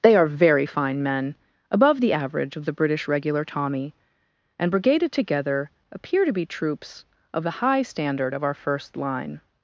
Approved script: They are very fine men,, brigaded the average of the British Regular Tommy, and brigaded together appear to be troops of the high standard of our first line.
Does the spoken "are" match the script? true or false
true